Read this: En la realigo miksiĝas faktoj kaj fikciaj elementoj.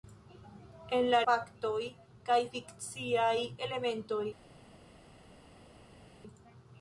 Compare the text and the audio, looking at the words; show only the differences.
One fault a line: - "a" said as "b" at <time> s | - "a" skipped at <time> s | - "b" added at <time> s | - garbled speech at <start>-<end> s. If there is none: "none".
- "realigo miksiĝas" skipped at 1.2 s